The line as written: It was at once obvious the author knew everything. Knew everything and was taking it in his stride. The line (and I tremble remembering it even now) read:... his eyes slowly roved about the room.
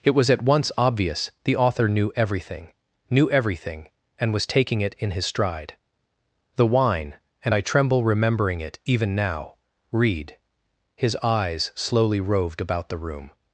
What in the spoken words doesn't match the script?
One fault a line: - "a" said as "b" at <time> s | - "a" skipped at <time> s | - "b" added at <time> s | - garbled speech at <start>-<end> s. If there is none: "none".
- "line" said as "wine" at 6.7 s